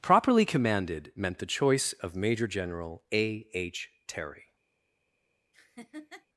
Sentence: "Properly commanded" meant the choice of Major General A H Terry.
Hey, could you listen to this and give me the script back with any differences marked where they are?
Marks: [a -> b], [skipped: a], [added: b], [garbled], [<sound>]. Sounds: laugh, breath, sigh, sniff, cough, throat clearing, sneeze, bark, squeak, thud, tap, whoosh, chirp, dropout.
"Properly commanded" meant the choice of Major General A H Terry. [laugh]